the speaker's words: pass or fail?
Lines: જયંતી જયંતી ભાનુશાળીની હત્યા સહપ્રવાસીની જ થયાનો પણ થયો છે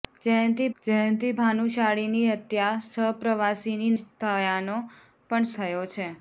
pass